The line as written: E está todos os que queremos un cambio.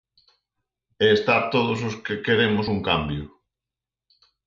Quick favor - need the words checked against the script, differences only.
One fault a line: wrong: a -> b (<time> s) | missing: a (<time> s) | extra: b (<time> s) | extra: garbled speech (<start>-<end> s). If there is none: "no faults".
no faults